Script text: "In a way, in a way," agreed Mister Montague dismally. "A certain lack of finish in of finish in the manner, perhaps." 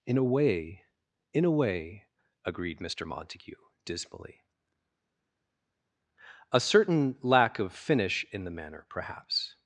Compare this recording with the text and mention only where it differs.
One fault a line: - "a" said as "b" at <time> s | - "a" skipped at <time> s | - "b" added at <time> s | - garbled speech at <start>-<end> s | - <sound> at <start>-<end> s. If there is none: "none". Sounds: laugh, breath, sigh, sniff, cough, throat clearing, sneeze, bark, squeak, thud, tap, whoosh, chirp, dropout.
- "of finish in" skipped at 8.4 s